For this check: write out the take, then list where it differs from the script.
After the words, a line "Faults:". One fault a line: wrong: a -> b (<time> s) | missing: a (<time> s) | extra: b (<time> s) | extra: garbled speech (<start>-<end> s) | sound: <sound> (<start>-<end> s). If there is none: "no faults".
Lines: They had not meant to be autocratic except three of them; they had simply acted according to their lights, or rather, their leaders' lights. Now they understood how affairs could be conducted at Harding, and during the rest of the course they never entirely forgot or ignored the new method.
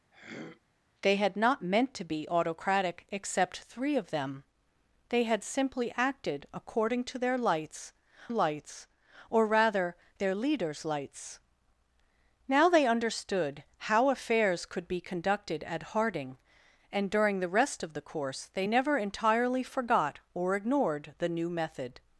They had not meant to be autocratic except three of them; they had simply acted according to their lights lights, or rather, their leaders' lights. Now they understood how affairs could be conducted at Harding, and during the rest of the course they never entirely forgot or ignored the new method.
Faults:
sound: throat clearing (0.1-0.6 s)
extra: lights (8.3 s)